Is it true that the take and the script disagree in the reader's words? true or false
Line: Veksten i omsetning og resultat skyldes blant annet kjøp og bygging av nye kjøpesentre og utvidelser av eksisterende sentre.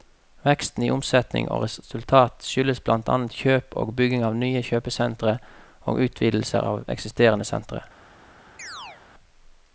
false